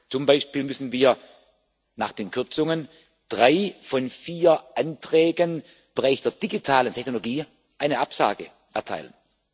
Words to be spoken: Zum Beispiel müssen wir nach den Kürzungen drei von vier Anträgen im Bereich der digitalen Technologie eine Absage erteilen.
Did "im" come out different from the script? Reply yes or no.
yes